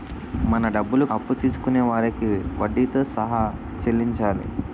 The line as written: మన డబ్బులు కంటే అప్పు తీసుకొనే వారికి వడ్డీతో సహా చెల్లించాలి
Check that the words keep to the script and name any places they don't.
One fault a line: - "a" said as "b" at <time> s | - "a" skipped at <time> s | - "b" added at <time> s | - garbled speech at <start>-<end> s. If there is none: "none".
- "కంటే" skipped at 1.1 s